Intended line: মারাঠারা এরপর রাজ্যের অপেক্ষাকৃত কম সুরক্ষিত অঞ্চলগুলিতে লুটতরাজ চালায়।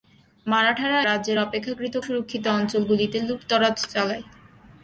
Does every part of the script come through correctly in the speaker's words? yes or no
no